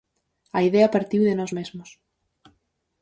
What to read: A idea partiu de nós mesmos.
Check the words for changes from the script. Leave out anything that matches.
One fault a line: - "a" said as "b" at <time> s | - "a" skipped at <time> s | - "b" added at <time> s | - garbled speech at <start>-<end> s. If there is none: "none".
none